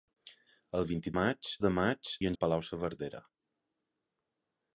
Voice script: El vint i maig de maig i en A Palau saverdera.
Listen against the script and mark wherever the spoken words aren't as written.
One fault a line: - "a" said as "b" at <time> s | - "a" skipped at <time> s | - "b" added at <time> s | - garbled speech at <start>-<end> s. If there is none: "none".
none